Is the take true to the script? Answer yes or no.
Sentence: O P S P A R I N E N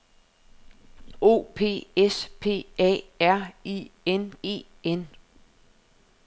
yes